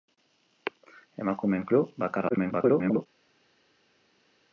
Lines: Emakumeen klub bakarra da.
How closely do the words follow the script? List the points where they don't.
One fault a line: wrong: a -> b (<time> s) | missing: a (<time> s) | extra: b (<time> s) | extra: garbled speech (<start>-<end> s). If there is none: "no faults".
extra: garbled speech (2.3-3.1 s)